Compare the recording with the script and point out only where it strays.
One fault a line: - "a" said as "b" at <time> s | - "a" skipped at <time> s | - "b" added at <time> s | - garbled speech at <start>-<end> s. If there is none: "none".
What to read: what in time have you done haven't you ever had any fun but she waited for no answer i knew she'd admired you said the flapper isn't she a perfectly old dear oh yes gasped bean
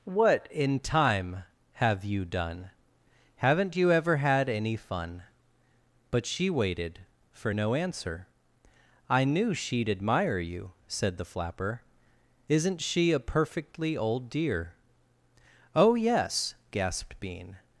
- "admired" said as "admire" at 9.9 s